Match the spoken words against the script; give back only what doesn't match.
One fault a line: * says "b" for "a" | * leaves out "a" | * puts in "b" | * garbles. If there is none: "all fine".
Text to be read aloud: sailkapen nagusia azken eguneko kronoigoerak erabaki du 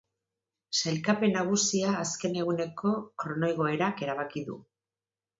all fine